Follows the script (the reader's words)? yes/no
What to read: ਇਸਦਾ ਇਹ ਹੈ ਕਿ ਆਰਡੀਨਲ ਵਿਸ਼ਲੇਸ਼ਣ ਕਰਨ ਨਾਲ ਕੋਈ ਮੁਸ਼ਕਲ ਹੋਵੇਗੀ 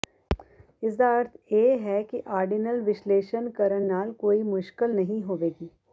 no